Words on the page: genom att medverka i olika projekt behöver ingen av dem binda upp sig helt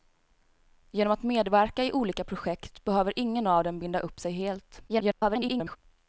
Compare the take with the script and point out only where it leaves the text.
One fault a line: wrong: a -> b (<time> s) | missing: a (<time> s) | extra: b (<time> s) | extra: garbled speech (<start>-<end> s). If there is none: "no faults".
extra: garbled speech (4.9-5.8 s)